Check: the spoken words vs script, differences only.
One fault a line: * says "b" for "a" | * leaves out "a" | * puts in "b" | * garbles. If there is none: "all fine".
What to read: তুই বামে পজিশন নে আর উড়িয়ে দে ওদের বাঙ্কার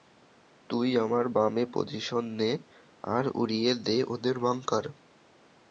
* puts in "আমার"